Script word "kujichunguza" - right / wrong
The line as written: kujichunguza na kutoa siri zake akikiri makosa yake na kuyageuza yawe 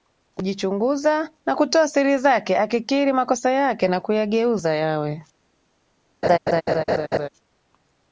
right